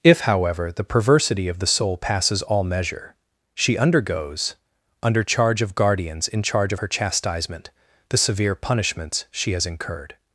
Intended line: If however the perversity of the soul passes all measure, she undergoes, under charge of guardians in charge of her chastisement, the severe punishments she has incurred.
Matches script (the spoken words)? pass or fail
pass